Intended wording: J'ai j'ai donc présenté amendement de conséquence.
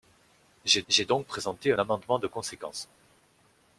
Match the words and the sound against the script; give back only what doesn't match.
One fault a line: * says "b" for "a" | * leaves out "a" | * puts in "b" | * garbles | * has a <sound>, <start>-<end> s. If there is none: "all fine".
all fine